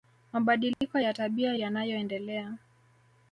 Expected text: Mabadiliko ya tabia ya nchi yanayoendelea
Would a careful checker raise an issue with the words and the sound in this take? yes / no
yes